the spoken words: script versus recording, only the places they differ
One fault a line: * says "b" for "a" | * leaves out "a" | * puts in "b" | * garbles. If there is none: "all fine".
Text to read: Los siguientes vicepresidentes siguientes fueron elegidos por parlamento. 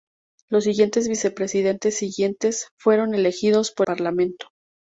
all fine